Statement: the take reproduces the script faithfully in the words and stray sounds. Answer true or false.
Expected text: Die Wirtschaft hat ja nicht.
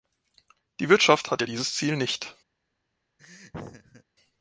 false